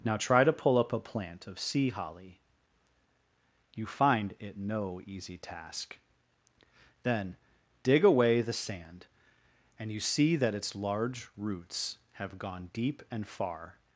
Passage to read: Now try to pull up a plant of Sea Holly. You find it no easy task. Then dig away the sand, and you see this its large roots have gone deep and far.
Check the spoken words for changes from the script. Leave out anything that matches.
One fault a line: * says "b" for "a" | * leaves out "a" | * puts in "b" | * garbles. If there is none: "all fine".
* says "that" for "this"